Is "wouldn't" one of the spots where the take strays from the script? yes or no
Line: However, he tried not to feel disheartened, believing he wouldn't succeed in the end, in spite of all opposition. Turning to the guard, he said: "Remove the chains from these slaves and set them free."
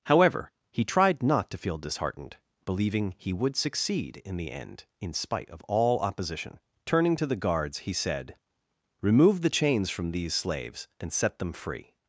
yes